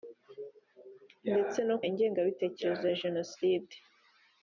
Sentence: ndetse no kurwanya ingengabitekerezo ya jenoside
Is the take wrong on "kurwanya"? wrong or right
wrong